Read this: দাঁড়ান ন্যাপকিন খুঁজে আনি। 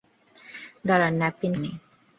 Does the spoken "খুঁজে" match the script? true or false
false